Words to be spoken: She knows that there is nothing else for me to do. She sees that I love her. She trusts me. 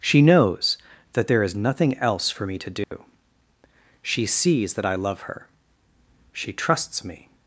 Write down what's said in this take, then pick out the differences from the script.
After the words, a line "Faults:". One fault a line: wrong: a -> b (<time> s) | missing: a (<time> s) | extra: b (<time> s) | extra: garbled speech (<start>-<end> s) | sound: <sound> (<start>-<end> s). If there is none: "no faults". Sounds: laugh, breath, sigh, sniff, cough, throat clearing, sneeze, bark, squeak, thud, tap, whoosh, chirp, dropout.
She knows that there is nothing else for me to do. She sees that I love her. She trusts me.
Faults:
sound: dropout (2.8-2.9 s)